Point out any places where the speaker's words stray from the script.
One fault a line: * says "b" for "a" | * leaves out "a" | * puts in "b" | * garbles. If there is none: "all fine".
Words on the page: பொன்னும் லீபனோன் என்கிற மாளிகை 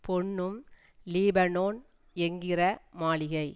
all fine